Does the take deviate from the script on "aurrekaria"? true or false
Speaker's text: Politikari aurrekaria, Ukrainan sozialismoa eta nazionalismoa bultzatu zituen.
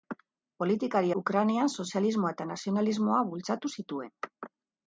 true